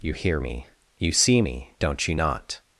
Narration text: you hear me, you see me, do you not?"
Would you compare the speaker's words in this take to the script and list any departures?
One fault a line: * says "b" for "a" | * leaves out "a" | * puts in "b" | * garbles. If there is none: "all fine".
* says "don't" for "do"